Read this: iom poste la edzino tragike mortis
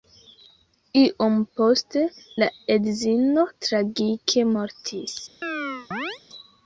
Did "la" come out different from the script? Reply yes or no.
no